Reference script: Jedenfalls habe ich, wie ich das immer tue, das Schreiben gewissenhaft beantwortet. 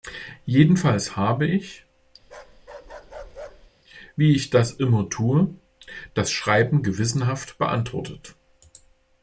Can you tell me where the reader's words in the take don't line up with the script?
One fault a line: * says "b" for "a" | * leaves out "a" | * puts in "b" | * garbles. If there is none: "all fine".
all fine